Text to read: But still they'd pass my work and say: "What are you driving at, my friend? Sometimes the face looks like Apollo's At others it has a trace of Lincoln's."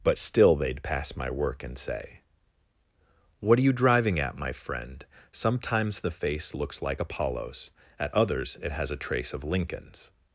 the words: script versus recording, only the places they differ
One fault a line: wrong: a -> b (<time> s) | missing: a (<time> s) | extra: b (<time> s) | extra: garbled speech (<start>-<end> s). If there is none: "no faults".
no faults